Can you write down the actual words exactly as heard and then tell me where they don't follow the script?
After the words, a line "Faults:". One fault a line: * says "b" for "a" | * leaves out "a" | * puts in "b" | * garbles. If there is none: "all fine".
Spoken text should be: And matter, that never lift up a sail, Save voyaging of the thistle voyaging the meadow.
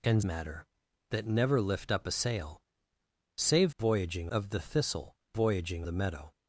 And matter, that never lift up a sail, Save voyaging of the thistle voyaging the meadow.
Faults:
all fine